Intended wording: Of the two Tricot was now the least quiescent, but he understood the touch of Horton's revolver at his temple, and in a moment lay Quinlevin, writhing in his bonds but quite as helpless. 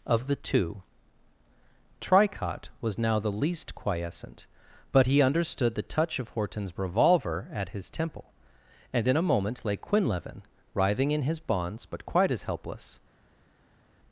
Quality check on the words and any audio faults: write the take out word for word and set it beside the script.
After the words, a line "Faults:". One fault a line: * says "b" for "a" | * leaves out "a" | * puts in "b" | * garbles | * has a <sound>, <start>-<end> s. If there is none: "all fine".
Of the two Tricot was now the least quiescent, but he understood the touch of Horton's revolver at his temple, and in a moment lay Quinlevin, writhing in his bonds but quite as helpless.
Faults:
all fine